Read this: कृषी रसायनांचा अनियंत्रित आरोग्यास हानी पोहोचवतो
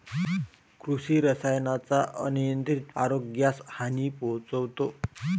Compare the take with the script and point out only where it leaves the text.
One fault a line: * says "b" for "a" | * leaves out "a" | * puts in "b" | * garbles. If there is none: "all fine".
all fine